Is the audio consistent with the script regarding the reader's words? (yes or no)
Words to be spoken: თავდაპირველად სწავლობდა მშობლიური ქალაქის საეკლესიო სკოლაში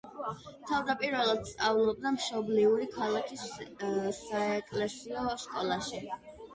yes